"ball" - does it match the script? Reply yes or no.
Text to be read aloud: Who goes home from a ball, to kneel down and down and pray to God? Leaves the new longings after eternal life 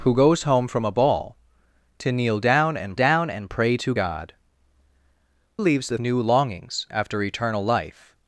yes